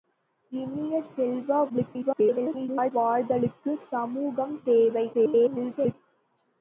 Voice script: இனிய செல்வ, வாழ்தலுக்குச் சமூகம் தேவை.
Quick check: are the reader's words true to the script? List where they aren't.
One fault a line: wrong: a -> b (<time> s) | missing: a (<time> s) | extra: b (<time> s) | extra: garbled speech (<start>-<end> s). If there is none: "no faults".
extra: garbled speech (1.7-2.9 s)
extra: garbled speech (5.1-5.9 s)